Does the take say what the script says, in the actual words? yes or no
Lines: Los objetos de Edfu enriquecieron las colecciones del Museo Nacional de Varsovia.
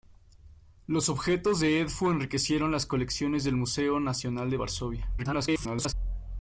no